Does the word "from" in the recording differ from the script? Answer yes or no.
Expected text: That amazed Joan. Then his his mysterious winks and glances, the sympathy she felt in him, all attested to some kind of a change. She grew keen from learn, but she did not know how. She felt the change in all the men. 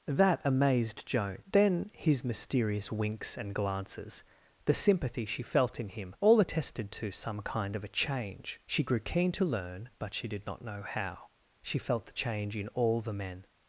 yes